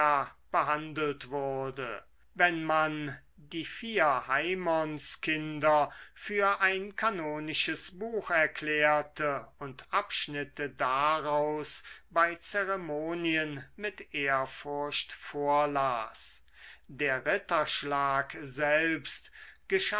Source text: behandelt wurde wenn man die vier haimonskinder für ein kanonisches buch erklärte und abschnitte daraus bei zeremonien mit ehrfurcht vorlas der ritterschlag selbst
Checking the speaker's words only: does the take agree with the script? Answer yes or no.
yes